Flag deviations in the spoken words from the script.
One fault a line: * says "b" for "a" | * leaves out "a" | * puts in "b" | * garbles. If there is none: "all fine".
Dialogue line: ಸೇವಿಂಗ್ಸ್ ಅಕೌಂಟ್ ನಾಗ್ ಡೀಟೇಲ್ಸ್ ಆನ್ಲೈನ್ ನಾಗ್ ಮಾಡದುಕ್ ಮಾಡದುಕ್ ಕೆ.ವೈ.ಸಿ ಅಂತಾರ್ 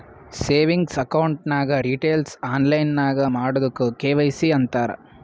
* leaves out "ಮಾಡದುಕ್"